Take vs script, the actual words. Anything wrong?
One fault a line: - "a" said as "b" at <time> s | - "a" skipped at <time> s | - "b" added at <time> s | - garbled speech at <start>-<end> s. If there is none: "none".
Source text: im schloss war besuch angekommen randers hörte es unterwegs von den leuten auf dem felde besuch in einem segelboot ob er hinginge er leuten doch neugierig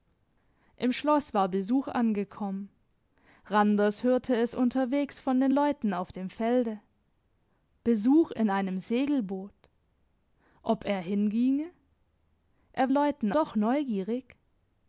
none